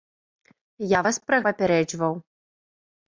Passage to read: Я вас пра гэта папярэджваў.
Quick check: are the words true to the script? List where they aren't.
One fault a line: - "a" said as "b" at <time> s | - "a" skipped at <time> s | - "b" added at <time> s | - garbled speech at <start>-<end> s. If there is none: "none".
- "гэта" skipped at 1.4 s